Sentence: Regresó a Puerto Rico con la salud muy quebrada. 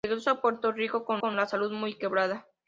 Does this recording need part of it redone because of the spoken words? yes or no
yes